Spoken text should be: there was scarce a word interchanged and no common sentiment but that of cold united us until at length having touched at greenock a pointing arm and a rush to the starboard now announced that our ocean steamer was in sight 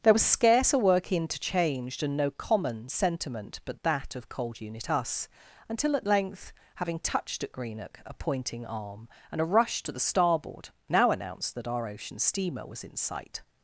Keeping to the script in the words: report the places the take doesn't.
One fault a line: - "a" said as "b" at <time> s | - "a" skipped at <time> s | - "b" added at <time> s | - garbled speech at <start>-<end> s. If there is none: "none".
- "word" said as "work" at 0.8 s
- "united" said as "unit" at 4.6 s